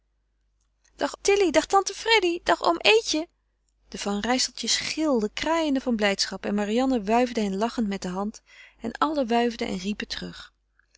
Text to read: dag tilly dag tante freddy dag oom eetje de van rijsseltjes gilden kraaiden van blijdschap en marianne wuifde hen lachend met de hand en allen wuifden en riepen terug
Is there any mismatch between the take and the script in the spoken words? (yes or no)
no